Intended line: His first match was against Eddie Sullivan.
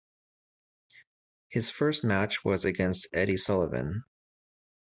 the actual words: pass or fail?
pass